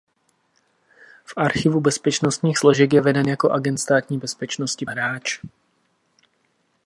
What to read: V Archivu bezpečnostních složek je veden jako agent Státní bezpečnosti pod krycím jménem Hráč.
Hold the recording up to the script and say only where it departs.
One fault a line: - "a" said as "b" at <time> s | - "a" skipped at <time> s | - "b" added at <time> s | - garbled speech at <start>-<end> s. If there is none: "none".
- "pod krycím jménem" skipped at 4.8 s